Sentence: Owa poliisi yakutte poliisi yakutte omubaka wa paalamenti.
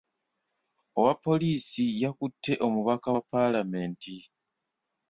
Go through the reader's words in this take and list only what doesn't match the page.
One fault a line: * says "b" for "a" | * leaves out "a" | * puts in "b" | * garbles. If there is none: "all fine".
* leaves out "poliisi yakutte"